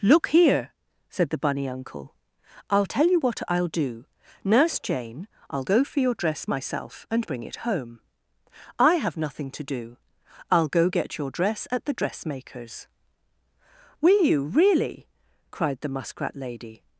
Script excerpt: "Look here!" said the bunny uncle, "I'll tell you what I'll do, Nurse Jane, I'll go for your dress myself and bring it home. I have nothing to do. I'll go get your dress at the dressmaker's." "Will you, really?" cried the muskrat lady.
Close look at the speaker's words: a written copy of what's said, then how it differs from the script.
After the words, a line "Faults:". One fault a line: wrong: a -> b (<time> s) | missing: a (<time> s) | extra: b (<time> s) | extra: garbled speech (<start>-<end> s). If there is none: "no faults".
"Look here!" said the bunny uncle, "I'll tell you what I'll do, Nurse Jane, I'll go for your dress myself and bring it home. I have nothing to do. I'll go get your dress at the dressmaker's." "Will you, really?" cried the muskrat lady.
Faults:
no faults